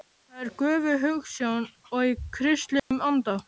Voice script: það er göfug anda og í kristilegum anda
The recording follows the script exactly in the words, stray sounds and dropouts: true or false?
false